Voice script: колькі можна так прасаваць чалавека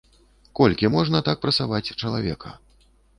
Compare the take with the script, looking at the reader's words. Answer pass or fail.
pass